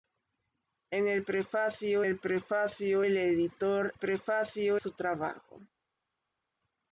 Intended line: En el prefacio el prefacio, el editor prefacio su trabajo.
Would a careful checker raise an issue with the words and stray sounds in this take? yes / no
no